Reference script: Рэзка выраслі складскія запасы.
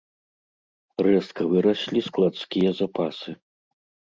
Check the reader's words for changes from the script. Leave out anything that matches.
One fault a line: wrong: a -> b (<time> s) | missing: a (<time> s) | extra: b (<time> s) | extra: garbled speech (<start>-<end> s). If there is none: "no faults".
no faults